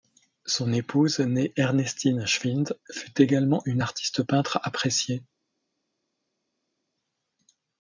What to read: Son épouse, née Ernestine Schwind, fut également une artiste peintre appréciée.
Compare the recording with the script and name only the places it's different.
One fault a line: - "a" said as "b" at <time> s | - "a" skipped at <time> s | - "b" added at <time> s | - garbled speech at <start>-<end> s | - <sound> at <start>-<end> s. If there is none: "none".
none